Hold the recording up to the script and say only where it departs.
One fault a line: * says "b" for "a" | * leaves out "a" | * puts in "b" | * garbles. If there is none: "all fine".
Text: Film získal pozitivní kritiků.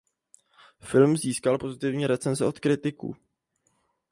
* puts in "recenze od"